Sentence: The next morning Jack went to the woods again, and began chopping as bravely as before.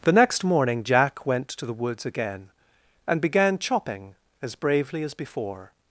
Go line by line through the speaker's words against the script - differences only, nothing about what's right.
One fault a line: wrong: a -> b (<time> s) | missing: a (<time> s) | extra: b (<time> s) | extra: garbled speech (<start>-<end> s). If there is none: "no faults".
no faults